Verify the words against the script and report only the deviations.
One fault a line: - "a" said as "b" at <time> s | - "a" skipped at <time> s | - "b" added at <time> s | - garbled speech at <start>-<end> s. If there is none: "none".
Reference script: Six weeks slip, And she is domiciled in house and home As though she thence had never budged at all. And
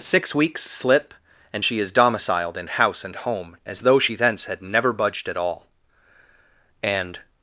none